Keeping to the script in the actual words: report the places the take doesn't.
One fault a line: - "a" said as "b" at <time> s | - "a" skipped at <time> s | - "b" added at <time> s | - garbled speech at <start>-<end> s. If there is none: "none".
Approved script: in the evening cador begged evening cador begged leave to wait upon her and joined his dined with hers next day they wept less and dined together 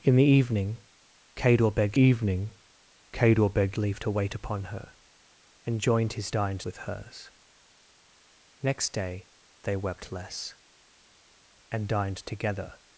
none